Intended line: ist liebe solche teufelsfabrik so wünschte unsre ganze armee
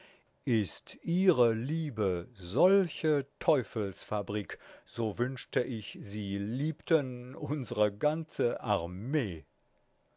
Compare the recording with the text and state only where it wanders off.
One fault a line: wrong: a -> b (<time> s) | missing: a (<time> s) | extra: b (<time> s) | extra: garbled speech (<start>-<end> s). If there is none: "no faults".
extra: ihre (1.0 s)
extra: ich sie liebten (5.6 s)